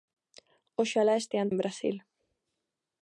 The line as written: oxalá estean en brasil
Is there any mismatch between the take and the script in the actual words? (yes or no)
no